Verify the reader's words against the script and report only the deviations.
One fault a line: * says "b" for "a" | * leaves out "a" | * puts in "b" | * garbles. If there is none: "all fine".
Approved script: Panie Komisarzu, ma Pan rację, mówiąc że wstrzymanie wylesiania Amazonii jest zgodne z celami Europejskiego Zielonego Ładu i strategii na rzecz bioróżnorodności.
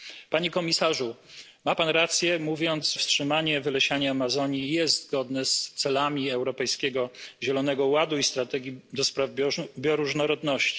* leaves out "że"